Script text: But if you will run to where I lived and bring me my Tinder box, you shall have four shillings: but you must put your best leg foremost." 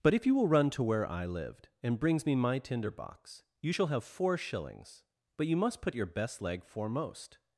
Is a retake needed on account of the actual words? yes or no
yes